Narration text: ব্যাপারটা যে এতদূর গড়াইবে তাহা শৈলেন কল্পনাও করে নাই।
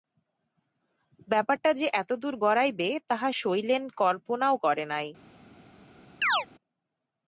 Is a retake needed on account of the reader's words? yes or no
no